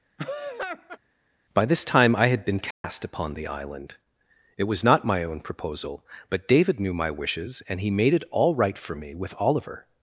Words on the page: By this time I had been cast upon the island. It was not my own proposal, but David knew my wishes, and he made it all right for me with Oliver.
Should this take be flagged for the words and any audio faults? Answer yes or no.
yes